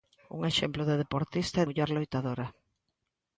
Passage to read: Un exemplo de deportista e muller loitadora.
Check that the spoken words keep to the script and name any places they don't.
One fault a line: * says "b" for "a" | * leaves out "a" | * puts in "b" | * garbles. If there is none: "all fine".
all fine